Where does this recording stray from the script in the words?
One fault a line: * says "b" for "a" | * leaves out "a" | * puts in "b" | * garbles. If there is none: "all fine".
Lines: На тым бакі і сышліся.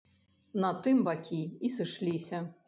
all fine